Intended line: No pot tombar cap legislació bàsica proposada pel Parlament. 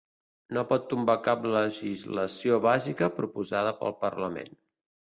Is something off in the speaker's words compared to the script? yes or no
no